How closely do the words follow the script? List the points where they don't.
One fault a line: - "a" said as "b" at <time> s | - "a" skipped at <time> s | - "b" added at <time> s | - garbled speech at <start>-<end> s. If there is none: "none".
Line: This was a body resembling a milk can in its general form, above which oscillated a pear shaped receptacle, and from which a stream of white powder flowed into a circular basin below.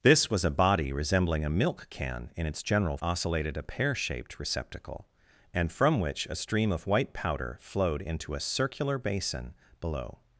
- "form above which" skipped at 3.0 s